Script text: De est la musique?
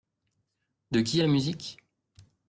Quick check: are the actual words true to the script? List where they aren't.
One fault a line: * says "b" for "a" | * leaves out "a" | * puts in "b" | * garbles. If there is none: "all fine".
* puts in "qui"